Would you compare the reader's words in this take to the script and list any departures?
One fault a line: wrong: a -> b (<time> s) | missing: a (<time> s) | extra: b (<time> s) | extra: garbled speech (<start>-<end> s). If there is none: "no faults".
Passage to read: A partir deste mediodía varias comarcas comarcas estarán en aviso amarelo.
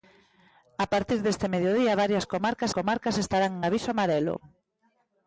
no faults